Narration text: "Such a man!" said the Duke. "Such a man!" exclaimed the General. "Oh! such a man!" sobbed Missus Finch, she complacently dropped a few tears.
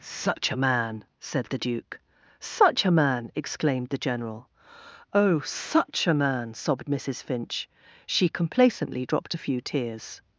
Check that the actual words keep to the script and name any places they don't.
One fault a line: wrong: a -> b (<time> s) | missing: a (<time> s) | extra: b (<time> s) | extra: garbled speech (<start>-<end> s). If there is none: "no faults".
no faults